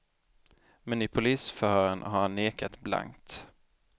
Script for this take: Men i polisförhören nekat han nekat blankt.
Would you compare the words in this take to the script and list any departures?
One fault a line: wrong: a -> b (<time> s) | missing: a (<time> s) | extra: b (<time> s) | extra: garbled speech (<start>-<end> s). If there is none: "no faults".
wrong: nekat -> har (2.0 s)